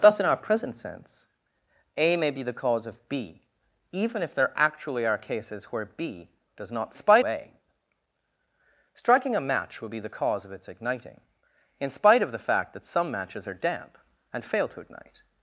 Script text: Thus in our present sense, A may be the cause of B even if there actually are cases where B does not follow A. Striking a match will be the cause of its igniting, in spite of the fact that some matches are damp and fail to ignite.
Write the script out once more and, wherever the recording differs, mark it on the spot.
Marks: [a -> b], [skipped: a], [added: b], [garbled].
Thus in our present sense, A may be the cause of B even if there actually are cases where B does not [follow -> spite] A. Striking a match will be the cause of its igniting, in spite of the fact that some matches are damp and fail to ignite.